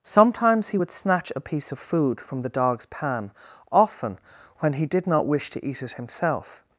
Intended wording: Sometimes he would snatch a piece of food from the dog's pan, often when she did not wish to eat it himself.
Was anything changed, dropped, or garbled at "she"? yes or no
yes